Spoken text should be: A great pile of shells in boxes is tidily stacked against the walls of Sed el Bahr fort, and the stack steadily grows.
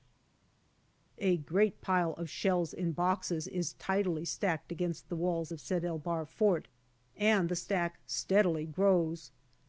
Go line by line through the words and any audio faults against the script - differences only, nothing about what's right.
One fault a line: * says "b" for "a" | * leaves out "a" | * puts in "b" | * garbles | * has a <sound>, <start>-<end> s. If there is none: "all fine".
all fine